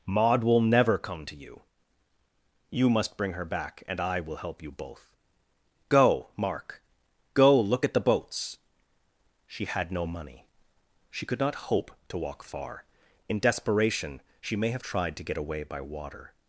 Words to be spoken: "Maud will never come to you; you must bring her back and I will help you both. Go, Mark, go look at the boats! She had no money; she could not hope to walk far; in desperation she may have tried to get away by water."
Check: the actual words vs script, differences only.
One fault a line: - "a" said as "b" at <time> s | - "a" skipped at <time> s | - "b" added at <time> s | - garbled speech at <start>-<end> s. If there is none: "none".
none